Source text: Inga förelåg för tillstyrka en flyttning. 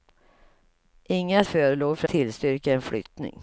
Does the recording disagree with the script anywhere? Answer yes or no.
no